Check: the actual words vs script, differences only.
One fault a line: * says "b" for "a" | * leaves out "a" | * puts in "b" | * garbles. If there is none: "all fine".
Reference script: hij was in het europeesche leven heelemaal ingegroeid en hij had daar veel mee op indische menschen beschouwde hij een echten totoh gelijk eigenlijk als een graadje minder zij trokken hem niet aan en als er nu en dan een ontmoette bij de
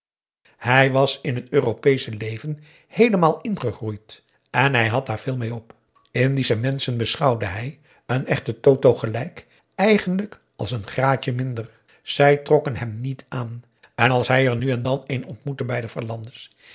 * puts in "hij"